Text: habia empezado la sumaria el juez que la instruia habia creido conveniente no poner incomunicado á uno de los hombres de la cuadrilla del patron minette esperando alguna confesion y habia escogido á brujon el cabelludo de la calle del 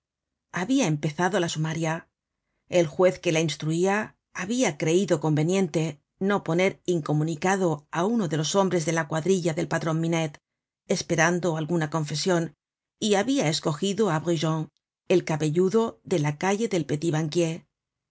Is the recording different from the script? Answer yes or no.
no